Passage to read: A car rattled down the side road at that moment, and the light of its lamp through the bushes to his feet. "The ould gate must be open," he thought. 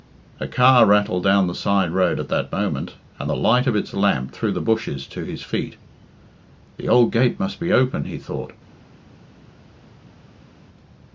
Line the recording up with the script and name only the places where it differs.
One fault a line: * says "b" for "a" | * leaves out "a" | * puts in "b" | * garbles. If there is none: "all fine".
all fine